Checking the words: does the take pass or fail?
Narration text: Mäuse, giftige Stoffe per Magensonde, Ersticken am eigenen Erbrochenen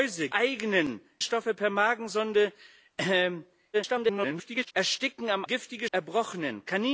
fail